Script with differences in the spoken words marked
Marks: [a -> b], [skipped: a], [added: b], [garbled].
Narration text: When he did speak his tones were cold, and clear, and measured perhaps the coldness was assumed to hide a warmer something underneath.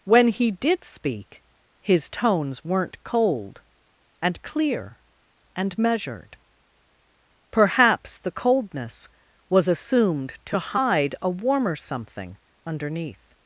When he did speak his tones [were -> weren't] cold, and clear, and measured perhaps the coldness was assumed to hide a warmer something underneath.